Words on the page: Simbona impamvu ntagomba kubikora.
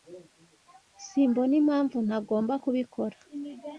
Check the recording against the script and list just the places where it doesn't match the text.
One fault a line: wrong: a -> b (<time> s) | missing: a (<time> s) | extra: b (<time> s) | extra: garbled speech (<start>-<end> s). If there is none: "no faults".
no faults